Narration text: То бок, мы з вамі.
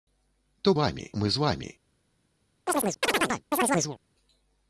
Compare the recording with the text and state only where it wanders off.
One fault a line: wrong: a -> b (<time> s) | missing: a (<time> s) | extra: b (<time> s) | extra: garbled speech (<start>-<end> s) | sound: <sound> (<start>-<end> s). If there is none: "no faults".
wrong: бок -> вамі (0.8 s)
sound: chirp (2.7-4.0 s)